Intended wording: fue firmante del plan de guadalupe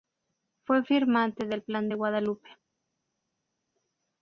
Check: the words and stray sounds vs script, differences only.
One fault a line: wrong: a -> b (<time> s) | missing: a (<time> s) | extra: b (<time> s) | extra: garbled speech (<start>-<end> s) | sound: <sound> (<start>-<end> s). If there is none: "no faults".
no faults